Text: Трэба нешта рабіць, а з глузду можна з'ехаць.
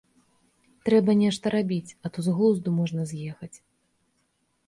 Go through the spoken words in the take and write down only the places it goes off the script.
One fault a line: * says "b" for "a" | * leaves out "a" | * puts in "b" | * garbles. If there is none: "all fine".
* puts in "то"